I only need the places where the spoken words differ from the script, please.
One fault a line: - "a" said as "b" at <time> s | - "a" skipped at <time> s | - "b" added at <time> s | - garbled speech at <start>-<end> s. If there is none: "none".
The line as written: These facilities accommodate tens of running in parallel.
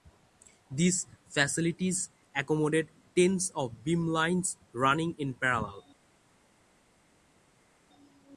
- "beamlines" added at 3.9 s